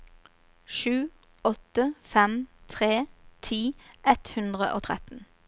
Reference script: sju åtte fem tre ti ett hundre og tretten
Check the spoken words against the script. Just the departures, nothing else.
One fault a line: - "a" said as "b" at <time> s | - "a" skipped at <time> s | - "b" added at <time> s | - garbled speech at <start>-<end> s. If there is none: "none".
none